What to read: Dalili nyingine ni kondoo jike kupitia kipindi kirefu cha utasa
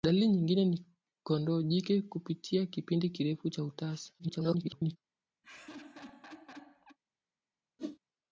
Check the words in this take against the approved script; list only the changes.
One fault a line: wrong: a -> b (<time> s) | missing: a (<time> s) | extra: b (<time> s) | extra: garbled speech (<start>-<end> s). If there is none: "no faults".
extra: garbled speech (4.2-5.0 s)